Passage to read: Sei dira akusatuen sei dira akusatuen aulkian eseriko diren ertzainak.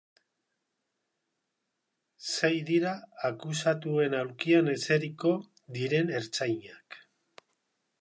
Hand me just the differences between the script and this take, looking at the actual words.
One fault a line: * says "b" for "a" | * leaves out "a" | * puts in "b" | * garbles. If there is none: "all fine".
* leaves out "sei dira akusatuen"